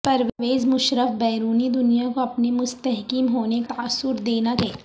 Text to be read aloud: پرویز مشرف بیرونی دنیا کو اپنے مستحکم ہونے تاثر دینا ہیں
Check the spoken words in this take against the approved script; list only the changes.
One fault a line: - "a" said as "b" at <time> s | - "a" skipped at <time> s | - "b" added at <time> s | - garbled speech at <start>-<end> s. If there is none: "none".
none